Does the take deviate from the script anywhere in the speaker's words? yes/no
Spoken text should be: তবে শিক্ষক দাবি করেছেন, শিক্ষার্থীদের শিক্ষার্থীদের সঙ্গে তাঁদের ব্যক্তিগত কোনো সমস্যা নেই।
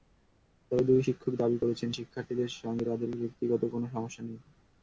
yes